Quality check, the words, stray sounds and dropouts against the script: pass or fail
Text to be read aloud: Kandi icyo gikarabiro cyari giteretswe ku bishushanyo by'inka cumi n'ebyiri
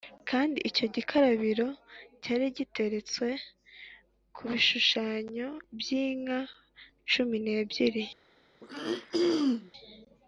fail